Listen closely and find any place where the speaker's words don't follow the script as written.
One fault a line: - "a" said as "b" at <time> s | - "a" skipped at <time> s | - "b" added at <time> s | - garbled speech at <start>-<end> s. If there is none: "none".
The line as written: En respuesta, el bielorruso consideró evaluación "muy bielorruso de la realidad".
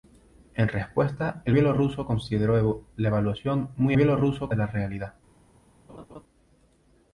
none